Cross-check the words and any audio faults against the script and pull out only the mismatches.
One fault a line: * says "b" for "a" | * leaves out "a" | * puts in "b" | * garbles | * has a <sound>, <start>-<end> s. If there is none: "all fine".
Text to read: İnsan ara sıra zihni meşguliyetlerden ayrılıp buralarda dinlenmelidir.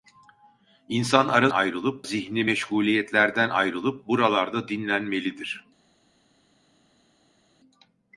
* says "ayrılıp" for "sıra"